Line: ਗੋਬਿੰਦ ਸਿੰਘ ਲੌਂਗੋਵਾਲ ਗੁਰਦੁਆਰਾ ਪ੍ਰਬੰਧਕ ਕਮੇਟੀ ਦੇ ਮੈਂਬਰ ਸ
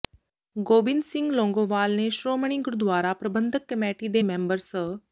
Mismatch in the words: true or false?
true